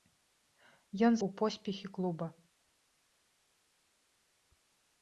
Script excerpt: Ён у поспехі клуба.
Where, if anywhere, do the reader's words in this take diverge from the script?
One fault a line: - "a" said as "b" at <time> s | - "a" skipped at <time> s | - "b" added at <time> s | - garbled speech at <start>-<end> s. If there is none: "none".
none